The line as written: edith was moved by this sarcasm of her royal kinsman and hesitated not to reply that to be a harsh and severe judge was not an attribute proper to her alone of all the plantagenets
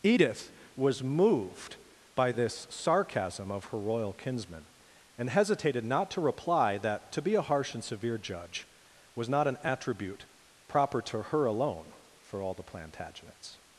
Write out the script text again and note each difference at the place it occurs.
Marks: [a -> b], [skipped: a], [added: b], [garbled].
edith was moved by this sarcasm of her royal kinsman and hesitated not to reply that to be a harsh and severe judge was not an attribute proper to her alone [of -> for] all the plantagenets